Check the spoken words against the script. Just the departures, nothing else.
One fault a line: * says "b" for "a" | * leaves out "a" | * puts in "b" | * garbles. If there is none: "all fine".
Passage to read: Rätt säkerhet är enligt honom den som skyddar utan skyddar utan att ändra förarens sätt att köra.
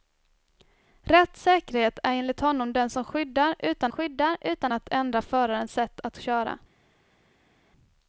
all fine